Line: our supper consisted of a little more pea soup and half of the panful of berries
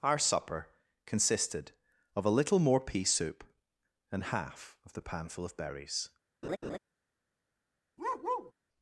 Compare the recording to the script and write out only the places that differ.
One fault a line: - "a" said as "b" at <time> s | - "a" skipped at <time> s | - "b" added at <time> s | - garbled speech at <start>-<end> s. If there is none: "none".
none